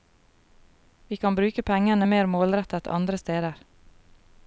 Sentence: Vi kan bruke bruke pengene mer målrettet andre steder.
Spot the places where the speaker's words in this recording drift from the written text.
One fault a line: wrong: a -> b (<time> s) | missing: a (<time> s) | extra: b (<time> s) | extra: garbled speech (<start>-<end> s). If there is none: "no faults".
missing: bruke (1.6 s)